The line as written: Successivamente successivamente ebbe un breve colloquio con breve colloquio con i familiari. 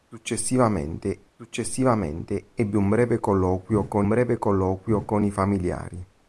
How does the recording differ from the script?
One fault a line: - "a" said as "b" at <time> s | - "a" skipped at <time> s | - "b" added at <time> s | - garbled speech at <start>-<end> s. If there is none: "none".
none